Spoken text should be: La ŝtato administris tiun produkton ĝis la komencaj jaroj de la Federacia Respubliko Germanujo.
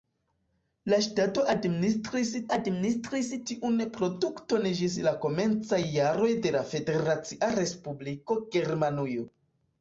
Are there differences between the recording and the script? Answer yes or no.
yes